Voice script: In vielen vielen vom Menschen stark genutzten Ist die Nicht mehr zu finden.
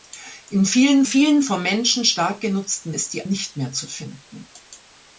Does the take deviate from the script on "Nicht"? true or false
false